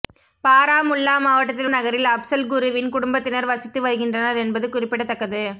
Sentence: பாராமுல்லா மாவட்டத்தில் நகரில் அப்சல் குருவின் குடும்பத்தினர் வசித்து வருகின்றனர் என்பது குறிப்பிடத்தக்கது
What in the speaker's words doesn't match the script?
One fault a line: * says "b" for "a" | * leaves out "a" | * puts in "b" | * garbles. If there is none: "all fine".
all fine